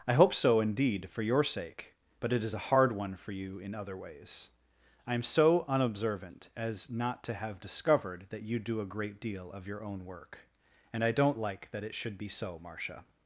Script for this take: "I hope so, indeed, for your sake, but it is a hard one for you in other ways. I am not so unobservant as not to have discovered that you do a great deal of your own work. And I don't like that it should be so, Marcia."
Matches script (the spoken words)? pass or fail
fail